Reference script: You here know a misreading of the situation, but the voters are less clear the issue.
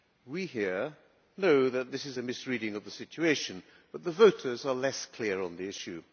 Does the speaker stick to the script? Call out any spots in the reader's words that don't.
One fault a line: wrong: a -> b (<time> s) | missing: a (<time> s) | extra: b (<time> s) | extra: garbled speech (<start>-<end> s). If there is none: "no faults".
wrong: You -> We (0.2 s)
extra: that this is (1.7 s)
extra: on (5.4 s)